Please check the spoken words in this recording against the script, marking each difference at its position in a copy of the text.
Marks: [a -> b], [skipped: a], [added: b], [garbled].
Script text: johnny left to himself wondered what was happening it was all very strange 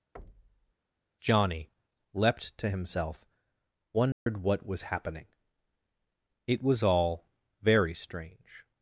johnny [left -> leapt] to himself wondered what was happening it was all very strange